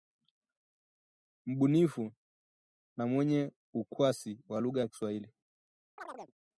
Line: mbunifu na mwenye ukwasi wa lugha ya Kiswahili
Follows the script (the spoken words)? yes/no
yes